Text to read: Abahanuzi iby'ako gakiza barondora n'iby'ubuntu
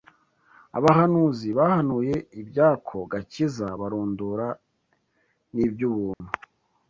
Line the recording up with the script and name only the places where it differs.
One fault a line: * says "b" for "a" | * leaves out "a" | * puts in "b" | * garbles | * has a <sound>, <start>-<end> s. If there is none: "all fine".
* puts in "bahanuye"
* has a dropout, 6.1-6.2 s